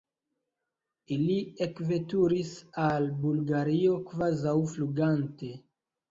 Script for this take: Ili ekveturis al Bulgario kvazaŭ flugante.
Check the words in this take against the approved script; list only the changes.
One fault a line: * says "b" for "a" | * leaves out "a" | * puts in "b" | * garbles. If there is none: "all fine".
all fine